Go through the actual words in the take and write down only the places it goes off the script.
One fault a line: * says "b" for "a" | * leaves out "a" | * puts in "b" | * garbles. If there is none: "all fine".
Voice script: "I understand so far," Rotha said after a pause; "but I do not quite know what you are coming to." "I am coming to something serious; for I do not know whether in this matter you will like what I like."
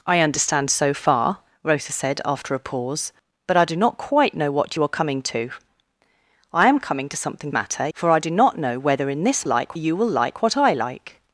* says "matter" for "serious"
* says "like" for "matter"